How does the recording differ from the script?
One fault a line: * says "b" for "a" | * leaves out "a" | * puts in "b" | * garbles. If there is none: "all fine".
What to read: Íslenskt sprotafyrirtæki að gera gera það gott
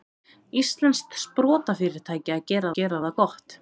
all fine